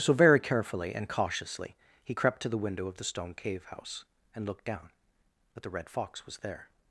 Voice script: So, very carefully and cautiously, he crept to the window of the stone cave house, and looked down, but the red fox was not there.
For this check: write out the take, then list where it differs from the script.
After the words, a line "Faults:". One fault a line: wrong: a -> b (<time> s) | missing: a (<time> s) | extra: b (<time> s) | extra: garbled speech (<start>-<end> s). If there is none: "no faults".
So, very carefully and cautiously, he crept to the window of the stone cave house, and looked down, but the red fox was there.
Faults:
missing: not (6.4 s)